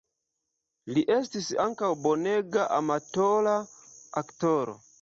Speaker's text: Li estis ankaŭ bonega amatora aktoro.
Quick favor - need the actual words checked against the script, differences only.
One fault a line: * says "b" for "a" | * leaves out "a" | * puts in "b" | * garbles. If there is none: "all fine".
all fine